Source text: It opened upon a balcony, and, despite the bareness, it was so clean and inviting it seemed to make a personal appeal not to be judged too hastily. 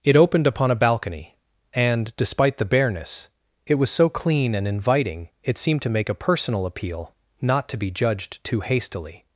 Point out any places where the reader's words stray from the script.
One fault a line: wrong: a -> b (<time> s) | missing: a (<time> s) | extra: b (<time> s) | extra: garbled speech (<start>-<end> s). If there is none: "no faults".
no faults